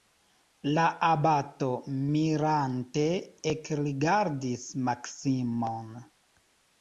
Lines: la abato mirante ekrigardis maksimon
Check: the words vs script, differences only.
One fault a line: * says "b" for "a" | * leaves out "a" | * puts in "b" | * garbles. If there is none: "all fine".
all fine